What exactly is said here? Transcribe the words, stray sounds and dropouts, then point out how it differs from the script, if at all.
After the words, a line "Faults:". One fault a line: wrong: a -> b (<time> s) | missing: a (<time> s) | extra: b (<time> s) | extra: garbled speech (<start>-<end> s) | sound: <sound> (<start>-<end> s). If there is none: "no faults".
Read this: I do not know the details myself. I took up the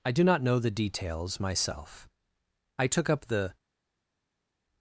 I do not know the details myself. I took up the
Faults:
no faults